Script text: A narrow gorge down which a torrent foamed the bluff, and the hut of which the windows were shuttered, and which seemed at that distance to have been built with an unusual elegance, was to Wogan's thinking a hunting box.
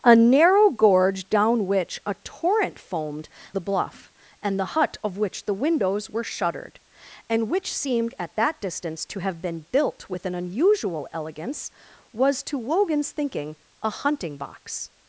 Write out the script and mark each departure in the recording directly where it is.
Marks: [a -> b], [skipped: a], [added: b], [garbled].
A narrow gorge down which a torrent foamed the bluff, and the hut of which the windows were shuttered, and which seemed at that distance to have been built with an unusual elegance, was to Wogan's thinking a hunting box.